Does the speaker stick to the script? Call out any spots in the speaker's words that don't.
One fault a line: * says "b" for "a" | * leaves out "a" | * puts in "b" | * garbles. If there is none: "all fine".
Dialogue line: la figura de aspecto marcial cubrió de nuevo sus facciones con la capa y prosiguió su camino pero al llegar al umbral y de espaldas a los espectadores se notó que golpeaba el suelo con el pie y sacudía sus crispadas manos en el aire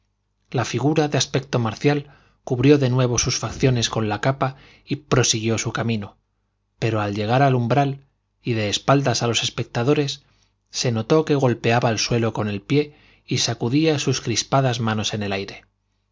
all fine